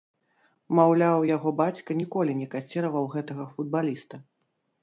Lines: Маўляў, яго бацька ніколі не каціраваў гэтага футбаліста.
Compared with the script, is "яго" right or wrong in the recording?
right